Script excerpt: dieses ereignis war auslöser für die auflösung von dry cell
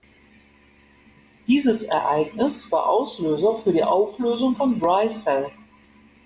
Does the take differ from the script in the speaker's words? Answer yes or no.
no